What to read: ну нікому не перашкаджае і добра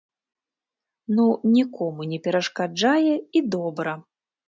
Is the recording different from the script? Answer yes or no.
no